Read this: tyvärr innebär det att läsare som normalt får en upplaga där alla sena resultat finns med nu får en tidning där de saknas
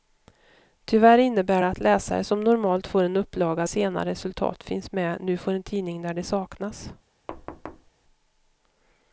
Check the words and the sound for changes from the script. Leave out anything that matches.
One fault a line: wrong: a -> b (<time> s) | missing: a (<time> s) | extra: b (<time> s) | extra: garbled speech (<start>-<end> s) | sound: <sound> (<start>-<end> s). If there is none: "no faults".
missing: där alla (3.7 s)
sound: thud (7.3-7.9 s)